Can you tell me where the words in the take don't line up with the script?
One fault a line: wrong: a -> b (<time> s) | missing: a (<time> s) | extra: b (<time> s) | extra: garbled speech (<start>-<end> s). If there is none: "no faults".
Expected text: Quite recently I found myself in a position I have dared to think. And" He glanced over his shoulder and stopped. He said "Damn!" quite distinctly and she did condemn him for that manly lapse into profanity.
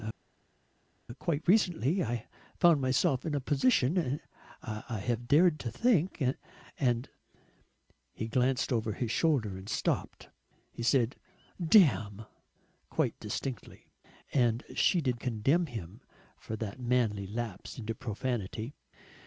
no faults